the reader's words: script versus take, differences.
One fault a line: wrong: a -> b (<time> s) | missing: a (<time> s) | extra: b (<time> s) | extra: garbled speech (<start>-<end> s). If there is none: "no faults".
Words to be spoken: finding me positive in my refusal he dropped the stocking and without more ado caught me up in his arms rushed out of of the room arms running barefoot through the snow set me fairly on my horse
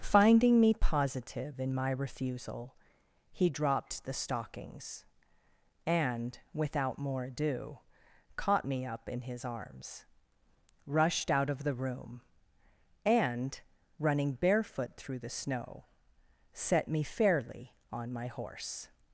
wrong: stocking -> stockings (4.1 s)
missing: of (11.6 s)
wrong: arms -> and (13.1 s)